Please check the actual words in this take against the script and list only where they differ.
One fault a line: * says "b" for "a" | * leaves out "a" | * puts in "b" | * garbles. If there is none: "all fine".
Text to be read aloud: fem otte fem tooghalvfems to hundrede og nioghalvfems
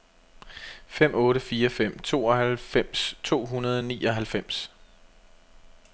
* puts in "fire"